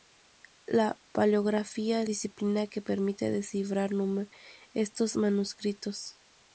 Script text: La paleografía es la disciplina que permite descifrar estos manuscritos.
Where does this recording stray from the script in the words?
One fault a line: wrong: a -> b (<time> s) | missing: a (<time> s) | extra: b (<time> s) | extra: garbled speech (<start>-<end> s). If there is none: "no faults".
missing: la (2.1 s)